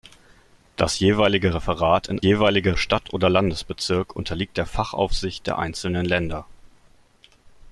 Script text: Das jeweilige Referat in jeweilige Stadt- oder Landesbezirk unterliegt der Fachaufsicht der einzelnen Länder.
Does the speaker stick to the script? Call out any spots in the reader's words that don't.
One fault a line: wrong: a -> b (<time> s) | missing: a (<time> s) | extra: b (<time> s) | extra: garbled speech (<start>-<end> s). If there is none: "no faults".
no faults